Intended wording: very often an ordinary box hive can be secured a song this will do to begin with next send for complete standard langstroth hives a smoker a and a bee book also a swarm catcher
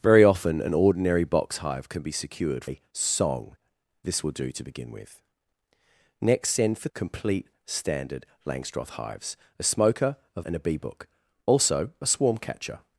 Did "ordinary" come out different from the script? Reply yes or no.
no